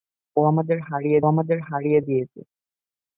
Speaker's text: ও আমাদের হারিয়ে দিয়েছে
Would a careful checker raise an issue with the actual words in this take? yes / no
yes